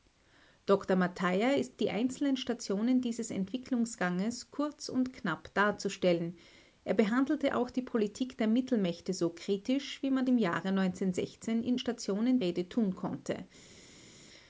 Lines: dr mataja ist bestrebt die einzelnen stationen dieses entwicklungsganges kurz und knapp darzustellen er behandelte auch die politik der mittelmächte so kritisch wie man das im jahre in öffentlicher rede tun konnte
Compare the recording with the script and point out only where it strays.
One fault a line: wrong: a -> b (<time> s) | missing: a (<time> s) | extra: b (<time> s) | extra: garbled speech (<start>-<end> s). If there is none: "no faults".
missing: bestrebt (1.8 s)
missing: das (10.2 s)
wrong: öffentlicher -> stationen (11.7 s)